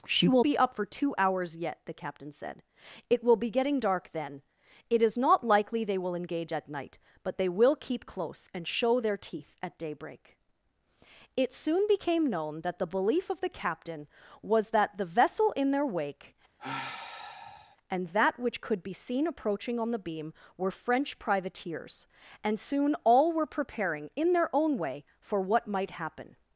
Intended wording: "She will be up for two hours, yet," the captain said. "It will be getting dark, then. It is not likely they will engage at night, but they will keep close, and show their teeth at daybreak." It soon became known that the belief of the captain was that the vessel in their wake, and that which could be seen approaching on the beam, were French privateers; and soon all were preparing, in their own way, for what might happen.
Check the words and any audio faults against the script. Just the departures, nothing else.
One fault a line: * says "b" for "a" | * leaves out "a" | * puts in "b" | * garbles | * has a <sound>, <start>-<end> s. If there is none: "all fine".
* has a sigh, 16.6-17.8 s